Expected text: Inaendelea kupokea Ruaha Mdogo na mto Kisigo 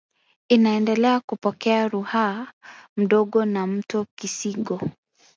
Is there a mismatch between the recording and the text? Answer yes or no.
no